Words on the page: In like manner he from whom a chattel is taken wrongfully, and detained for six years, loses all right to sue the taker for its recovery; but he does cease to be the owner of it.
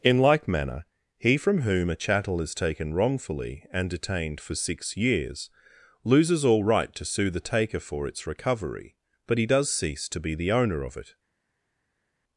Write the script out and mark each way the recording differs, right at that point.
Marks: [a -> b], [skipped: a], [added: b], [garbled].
In like manner he from whom a chattel is taken wrongfully, and detained for six years, loses all right to sue the taker for its recovery; but he does cease to be the owner of it.